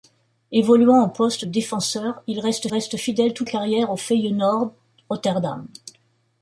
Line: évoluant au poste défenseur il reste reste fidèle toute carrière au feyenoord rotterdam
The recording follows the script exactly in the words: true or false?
true